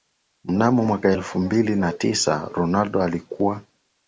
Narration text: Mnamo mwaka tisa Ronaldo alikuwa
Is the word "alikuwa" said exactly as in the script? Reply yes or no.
yes